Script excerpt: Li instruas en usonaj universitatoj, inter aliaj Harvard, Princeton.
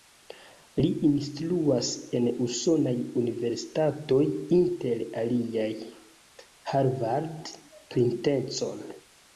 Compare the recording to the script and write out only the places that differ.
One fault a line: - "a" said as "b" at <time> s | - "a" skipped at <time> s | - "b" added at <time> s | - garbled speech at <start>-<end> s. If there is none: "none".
none